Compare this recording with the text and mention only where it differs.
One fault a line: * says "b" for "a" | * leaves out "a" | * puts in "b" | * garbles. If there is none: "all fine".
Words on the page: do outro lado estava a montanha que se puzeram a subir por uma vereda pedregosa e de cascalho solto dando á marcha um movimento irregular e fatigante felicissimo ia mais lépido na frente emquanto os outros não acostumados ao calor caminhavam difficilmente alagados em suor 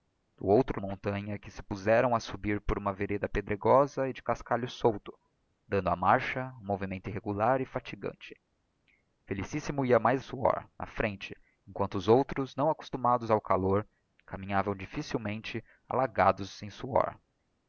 * leaves out "lado estava"
* says "suor" for "lépido"